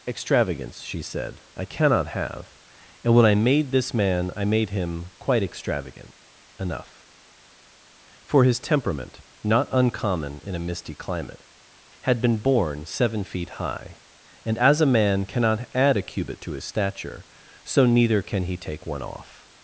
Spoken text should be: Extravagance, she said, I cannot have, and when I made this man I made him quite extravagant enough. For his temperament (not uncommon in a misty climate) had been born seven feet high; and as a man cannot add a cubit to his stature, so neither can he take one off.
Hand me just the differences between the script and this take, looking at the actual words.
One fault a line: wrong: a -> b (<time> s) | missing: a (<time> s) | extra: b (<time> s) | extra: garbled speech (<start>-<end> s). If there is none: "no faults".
no faults